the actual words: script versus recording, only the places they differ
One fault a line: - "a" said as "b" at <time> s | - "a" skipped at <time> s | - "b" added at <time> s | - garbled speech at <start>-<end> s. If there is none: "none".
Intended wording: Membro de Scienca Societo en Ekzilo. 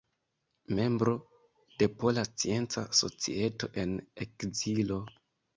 - "Pola" added at 2.0 s